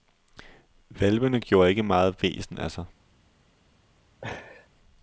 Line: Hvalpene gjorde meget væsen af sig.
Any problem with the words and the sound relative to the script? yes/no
yes